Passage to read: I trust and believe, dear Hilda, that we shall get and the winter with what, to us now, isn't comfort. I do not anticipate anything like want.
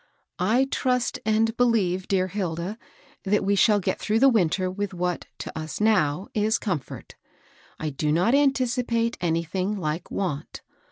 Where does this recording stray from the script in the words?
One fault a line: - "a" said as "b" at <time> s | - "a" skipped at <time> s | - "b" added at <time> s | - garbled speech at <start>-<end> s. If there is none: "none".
- "and" said as "through" at 4.0 s
- "isn't" said as "is" at 6.3 s